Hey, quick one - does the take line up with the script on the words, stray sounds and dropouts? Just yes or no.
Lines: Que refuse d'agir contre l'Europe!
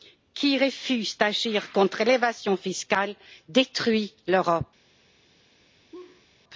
no